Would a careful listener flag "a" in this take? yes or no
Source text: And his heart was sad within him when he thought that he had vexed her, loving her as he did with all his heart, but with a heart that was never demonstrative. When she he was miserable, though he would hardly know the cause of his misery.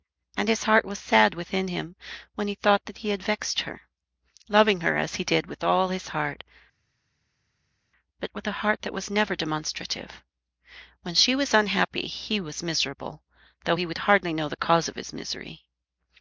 no